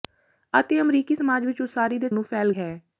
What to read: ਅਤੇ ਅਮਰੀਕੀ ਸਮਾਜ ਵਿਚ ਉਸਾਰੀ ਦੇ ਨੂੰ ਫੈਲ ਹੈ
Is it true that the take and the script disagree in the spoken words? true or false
false